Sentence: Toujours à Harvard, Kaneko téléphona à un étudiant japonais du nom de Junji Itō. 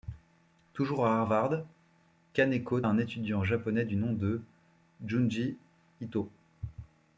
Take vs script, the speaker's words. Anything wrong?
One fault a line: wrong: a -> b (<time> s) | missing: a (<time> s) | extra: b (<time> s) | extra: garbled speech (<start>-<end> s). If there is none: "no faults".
missing: téléphona (2.8 s)